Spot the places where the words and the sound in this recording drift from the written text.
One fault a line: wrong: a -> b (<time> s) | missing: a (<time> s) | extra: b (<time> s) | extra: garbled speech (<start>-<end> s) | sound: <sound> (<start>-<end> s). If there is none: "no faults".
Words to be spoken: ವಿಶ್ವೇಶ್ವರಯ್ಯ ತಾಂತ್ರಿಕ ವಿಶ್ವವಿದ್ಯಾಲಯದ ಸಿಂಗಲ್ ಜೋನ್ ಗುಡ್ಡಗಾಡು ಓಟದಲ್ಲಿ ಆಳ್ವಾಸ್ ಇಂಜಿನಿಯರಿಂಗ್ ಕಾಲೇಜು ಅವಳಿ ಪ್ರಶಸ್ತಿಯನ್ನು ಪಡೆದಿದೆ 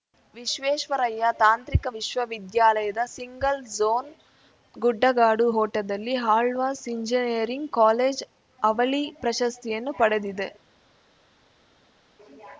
no faults